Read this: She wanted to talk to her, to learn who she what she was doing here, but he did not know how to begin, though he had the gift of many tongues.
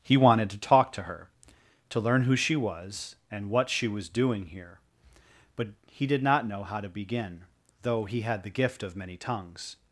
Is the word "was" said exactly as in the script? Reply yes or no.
yes